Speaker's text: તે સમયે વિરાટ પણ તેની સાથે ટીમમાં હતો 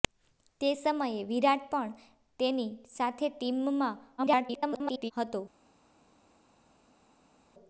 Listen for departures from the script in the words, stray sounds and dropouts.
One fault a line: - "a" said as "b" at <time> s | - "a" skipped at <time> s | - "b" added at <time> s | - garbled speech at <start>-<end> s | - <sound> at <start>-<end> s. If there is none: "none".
- garbled speech at 4.2-5.1 s